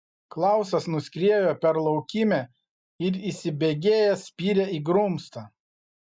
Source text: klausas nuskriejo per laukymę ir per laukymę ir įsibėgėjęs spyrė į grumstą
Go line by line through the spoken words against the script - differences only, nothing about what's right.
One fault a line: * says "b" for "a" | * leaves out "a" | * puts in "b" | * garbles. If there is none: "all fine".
* leaves out "per laukymę ir"